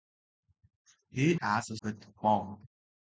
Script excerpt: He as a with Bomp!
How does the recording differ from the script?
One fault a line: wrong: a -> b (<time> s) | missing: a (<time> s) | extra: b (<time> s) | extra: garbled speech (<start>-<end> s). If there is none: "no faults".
no faults